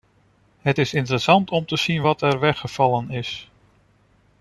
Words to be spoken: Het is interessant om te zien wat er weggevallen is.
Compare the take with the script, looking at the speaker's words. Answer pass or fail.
pass